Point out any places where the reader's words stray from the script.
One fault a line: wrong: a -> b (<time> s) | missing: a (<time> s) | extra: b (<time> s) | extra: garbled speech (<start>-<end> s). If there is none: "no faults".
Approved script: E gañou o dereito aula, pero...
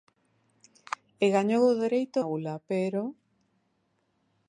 no faults